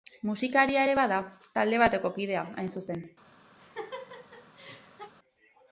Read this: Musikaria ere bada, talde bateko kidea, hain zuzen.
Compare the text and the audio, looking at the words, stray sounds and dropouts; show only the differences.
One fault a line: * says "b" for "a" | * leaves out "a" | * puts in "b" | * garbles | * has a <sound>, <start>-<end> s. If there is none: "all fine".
* has a laugh, 3.6-5.1 s